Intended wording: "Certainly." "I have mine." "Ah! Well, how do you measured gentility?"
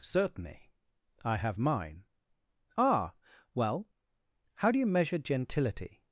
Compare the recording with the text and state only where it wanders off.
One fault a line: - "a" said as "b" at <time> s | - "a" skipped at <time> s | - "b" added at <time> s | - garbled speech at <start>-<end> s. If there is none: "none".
- "measured" said as "measure" at 4.9 s